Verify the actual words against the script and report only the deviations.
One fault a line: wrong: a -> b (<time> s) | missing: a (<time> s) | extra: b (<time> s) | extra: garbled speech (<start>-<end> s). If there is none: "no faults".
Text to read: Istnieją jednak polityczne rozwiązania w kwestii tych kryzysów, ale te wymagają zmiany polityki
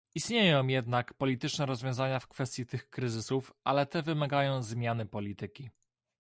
no faults